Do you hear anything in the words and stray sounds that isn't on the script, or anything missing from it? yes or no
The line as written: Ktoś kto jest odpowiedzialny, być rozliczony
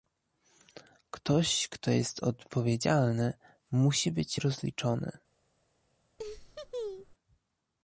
yes